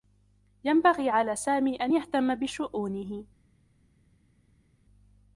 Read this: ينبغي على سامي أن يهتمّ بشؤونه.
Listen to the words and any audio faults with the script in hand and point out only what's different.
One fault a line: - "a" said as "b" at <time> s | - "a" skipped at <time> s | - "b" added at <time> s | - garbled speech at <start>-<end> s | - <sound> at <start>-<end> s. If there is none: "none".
none